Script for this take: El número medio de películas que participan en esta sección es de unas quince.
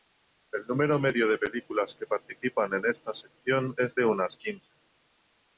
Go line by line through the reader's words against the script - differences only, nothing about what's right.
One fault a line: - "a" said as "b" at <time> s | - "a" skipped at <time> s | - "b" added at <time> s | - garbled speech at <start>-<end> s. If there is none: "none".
none